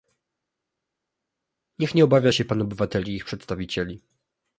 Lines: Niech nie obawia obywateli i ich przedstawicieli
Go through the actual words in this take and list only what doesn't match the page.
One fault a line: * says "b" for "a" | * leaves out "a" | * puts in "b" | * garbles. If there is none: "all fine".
* puts in "się pan"